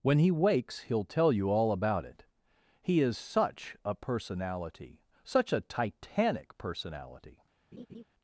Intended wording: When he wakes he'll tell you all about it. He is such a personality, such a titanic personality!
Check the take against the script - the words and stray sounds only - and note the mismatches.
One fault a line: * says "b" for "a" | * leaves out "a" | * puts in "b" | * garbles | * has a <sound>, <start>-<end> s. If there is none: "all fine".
* has a laugh, 7.7-8.0 s